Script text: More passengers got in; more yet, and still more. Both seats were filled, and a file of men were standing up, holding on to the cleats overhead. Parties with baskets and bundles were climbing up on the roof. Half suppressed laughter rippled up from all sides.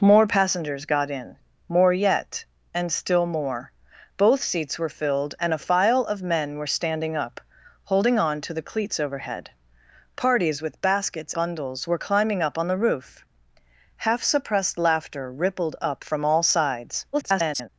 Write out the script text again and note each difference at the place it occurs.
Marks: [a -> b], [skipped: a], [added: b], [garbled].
More passengers got in; more yet, and still more. Both seats were filled, and a file of men were standing up, holding on to the cleats overhead. Parties with baskets [skipped: and] bundles were climbing up on the roof. Half suppressed laughter rippled up from all sides. [garbled]